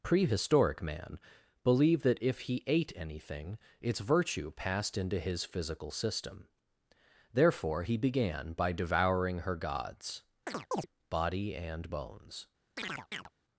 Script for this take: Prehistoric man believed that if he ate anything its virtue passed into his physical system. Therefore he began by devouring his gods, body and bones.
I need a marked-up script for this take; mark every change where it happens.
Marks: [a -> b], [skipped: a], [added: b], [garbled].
Prehistoric man believed that if he ate anything its virtue passed into his physical system. Therefore he began by devouring [his -> her] gods, body and bones.